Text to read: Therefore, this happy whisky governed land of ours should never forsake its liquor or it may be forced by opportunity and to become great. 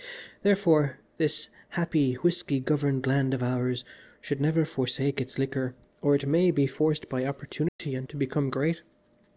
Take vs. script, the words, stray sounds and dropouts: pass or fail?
fail